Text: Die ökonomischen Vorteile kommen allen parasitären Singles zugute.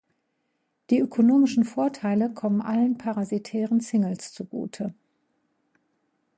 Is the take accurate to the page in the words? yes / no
yes